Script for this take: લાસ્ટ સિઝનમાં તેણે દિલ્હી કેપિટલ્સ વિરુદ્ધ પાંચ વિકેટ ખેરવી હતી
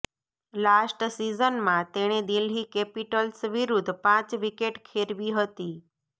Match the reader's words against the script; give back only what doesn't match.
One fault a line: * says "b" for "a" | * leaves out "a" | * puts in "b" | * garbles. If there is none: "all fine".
all fine